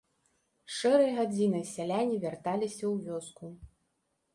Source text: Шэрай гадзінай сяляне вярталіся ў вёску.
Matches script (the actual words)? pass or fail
pass